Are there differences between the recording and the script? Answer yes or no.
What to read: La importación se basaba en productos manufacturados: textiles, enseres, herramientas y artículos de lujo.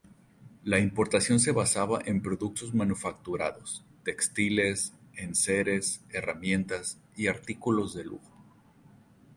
no